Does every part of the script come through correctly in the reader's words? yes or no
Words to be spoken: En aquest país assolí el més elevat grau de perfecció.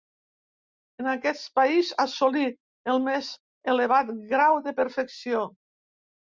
yes